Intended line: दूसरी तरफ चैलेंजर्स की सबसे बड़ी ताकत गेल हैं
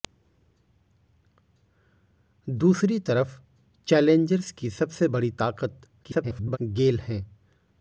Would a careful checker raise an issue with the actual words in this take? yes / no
yes